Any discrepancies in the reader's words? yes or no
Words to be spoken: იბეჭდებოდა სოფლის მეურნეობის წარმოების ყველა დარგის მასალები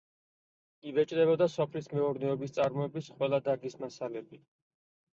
no